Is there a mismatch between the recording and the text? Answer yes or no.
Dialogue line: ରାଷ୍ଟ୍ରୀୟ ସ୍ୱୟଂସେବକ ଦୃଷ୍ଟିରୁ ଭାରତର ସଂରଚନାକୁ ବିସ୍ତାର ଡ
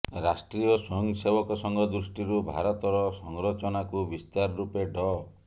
yes